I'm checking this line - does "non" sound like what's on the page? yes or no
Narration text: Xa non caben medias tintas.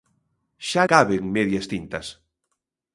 no